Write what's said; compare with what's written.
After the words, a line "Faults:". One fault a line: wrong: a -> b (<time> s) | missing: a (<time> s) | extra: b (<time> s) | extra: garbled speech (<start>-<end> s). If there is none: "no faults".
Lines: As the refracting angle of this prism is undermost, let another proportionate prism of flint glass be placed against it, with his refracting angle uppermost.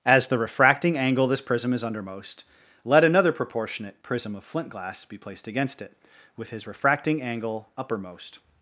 As the refracting angle of this prism is undermost, let another proportionate prism of flint glass be placed against it, with his refracting angle uppermost.
Faults:
no faults